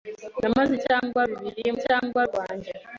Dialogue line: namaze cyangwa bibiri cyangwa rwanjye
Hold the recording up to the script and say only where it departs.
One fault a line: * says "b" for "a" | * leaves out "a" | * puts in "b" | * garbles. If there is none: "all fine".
all fine